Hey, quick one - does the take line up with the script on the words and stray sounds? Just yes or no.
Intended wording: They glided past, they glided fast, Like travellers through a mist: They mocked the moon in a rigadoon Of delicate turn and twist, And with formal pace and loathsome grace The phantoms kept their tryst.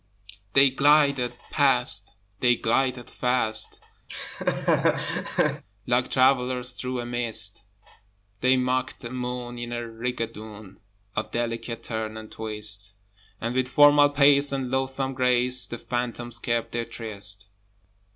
no